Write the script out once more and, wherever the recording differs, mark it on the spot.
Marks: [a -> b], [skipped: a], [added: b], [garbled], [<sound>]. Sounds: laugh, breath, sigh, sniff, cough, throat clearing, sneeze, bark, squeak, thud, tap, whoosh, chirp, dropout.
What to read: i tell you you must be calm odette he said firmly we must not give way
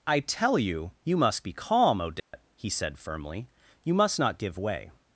i tell you you must be calm odette [dropout] he said firmly [we -> you] must not give way